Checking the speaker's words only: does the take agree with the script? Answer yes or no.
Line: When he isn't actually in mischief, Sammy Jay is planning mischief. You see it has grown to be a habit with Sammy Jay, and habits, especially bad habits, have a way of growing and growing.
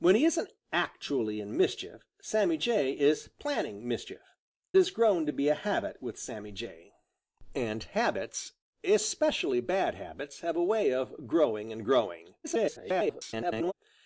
no